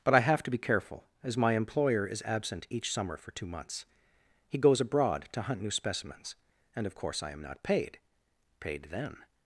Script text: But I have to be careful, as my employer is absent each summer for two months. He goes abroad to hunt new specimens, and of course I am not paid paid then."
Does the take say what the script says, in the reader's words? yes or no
yes